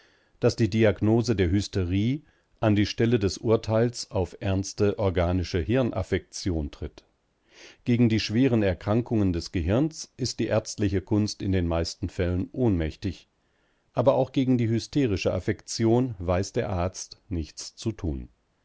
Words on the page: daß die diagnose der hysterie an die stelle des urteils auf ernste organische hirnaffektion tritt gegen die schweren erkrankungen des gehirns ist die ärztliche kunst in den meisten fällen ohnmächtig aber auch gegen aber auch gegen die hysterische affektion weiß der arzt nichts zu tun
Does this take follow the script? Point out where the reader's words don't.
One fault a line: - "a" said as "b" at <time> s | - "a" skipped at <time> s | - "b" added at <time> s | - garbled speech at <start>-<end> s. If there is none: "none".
- "aber auch gegen" skipped at 14.6 s